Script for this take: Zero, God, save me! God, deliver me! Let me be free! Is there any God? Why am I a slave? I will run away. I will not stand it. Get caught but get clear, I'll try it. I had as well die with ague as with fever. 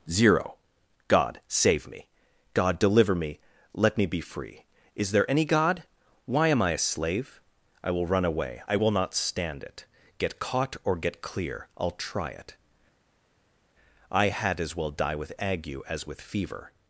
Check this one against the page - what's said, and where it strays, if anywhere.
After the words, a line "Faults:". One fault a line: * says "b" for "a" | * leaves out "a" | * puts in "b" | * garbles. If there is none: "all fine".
Zero, God, save me! God, deliver me! Let me be free! Is there any God? Why am I a slave? I will run away. I will not stand it. Get caught or get clear, I'll try it. I had as well die with ague as with fever.
Faults:
* says "or" for "but"